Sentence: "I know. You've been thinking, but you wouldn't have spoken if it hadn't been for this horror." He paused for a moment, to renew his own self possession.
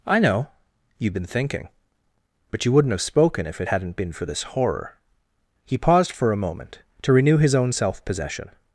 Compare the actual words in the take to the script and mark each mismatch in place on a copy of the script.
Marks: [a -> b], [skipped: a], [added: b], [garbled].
"I know. You've been thinking, but you wouldn't have spoken if it hadn't been for this horror." He paused for a moment, to renew his own self possession.